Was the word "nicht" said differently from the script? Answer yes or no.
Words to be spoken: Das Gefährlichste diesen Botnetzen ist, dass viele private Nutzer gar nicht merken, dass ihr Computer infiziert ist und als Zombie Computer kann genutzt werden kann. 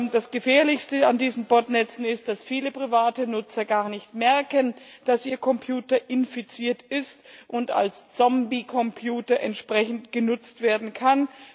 no